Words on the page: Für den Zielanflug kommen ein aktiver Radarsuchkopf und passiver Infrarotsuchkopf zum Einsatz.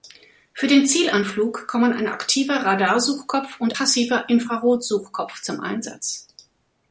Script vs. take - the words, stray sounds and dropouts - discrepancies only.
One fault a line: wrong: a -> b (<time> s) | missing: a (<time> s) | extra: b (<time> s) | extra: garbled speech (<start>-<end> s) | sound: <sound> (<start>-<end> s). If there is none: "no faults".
no faults